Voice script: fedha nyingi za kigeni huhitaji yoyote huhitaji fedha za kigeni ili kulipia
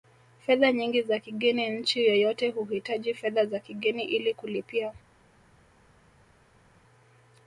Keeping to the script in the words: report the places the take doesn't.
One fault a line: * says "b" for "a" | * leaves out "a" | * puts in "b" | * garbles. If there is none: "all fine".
* says "nchi" for "huhitaji"